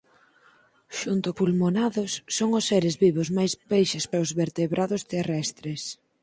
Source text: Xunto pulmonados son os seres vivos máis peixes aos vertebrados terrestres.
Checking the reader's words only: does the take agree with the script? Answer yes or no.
yes